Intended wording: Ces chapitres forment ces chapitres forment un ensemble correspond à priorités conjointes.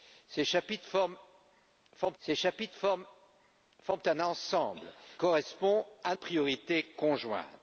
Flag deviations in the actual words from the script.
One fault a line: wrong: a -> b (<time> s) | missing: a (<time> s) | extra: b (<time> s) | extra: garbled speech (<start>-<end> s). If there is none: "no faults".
no faults